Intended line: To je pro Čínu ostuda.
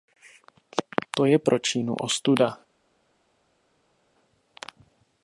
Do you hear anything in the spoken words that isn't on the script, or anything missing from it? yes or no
no